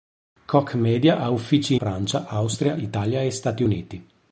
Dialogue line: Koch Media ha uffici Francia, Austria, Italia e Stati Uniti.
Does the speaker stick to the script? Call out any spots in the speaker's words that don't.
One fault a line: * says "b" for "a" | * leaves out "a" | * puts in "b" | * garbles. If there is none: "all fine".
all fine